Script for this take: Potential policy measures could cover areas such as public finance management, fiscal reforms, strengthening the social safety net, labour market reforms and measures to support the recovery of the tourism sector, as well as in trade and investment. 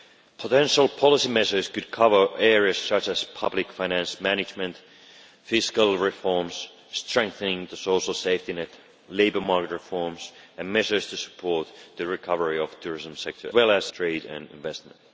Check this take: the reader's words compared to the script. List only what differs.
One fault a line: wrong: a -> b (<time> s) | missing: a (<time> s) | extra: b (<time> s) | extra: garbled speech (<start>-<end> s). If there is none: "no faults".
missing: as (13.5 s)
missing: in (13.9 s)